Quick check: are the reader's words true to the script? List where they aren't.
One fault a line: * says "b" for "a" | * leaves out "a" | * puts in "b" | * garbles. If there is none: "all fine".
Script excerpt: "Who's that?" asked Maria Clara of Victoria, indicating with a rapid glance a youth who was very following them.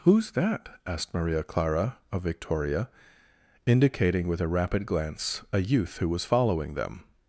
* leaves out "very"